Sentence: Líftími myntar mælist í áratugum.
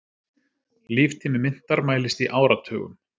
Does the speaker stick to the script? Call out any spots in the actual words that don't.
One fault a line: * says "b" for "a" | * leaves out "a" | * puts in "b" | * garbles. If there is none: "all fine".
all fine